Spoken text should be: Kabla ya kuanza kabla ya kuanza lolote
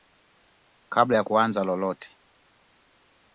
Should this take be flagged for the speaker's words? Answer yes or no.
yes